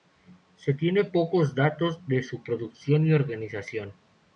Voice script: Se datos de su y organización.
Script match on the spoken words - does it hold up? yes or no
no